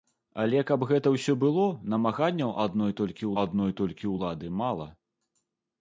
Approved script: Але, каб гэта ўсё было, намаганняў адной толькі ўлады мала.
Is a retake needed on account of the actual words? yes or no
yes